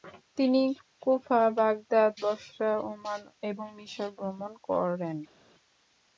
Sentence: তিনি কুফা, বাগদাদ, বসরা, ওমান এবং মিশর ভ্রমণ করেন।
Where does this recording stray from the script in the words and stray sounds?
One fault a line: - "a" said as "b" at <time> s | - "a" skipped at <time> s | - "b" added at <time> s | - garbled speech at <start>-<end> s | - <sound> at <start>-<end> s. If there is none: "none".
none